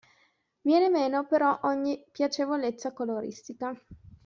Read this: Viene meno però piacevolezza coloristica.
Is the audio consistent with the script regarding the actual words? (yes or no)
no